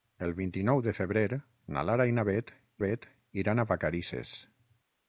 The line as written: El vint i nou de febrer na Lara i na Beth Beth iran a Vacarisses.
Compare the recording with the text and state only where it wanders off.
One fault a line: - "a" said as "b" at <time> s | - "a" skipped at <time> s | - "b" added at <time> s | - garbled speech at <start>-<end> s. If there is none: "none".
none